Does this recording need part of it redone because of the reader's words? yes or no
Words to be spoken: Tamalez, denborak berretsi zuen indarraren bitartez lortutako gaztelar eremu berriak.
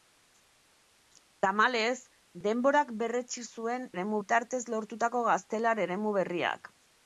yes